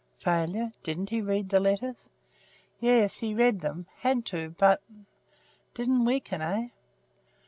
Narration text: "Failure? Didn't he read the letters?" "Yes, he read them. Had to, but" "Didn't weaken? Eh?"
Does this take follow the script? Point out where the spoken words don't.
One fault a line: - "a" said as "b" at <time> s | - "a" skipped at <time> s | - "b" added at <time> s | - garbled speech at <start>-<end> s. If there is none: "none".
none